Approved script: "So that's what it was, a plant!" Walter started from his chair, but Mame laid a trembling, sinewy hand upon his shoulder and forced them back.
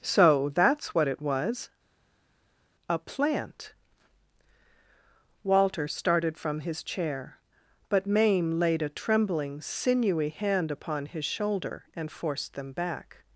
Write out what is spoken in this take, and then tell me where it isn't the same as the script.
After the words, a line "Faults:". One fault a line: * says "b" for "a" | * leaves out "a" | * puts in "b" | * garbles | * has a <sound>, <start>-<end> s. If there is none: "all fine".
"So that's what it was, a plant!" Walter started from his chair, but Mame laid a trembling, sinewy hand upon his shoulder and forced them back.
Faults:
all fine